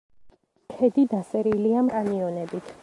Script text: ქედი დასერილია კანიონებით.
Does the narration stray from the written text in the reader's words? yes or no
no